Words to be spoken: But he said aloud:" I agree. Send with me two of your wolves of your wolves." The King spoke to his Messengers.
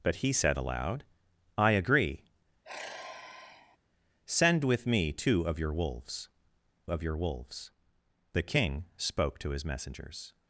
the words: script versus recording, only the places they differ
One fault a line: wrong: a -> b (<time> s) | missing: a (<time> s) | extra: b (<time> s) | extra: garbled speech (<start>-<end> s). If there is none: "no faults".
no faults